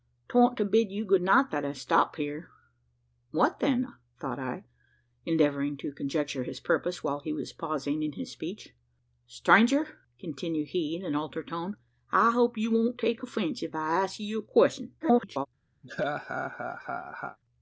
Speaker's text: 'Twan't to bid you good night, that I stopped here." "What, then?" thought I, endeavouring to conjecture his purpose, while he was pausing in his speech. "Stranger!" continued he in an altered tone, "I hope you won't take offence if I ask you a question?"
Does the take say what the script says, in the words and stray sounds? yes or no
no